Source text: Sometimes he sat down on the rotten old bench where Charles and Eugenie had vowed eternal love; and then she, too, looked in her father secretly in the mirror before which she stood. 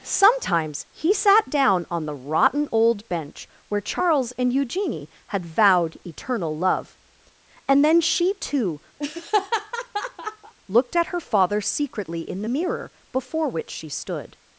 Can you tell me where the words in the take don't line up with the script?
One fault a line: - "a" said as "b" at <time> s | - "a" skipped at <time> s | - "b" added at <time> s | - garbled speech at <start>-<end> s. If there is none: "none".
- "in" said as "at" at 10.9 s